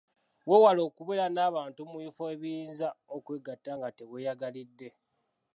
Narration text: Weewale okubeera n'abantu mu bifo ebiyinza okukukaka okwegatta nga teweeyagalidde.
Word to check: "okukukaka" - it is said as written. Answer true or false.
false